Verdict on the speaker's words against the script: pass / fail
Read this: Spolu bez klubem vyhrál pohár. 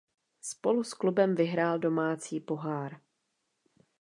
fail